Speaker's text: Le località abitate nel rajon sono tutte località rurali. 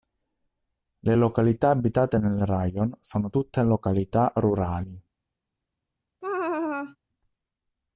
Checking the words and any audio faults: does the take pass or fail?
fail